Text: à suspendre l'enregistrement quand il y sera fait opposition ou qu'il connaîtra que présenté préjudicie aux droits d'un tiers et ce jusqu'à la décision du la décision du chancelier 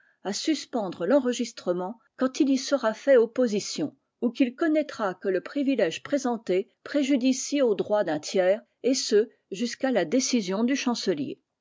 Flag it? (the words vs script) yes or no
yes